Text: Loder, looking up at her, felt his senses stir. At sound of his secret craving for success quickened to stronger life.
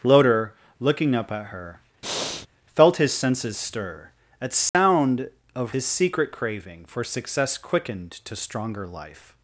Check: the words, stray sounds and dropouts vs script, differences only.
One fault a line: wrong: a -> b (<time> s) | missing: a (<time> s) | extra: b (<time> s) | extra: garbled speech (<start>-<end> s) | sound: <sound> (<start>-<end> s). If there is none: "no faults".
sound: breath (2.0-2.5 s)
sound: dropout (4.7-4.7 s)